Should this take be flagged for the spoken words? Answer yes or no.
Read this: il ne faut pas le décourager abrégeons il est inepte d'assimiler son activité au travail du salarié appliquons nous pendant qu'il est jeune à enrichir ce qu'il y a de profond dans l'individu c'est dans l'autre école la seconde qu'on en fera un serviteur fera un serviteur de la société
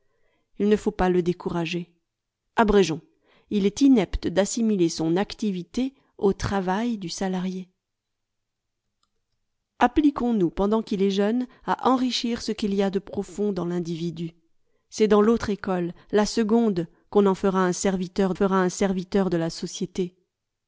no